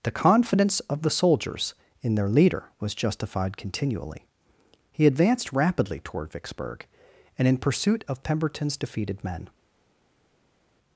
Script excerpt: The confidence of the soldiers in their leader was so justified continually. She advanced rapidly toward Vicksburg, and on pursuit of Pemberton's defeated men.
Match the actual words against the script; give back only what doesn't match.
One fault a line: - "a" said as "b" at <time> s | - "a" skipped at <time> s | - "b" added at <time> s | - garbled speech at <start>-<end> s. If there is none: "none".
- "so" skipped at 3.0 s
- "She" said as "He" at 4.9 s
- "on" said as "in" at 7.5 s